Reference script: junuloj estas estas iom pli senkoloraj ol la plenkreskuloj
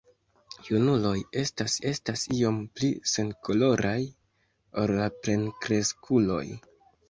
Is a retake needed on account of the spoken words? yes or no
no